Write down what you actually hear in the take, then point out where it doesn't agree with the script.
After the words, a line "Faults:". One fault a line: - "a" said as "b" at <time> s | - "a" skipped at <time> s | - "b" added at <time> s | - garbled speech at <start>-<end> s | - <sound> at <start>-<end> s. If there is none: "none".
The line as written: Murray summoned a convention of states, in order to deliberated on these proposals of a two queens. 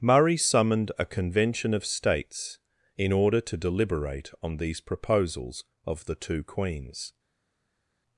Murray summoned a convention of states, in order to deliberate on these proposals of the two queens.
Faults:
- "deliberated" said as "deliberate" at 3.5 s
- "a" said as "the" at 6.0 s